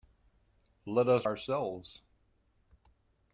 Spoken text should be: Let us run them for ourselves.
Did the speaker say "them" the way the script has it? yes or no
no